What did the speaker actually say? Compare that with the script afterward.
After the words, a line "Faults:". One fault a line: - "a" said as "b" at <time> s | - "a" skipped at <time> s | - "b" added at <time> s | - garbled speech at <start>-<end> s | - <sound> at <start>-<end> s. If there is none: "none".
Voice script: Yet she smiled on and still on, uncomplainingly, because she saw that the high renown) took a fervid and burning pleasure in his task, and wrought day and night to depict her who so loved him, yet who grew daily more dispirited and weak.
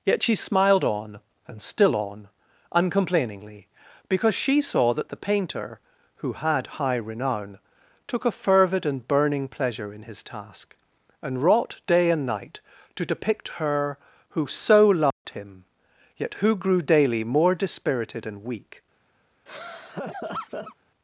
Yet she smiled on and still on, uncomplainingly, because she saw that the painter (who had high renown) took a fervid and burning pleasure in his task, and wrought day and night to depict her who so loved him, yet who grew daily more dispirited and weak.
Faults:
- "painter who had" added at 5.2 s
- dropout at 15.1-15.3 s
- laugh at 19.5-20.8 s